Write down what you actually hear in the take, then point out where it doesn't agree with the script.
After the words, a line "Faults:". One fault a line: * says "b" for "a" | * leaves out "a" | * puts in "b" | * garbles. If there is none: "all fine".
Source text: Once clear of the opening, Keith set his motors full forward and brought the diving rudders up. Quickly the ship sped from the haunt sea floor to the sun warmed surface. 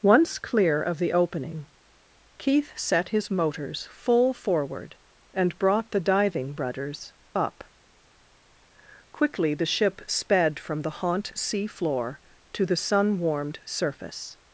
Once clear of the opening, Keith set his motors full forward and brought the diving rudders up. Quickly the ship sped from the haunt sea floor to the sun warmed surface.
Faults:
all fine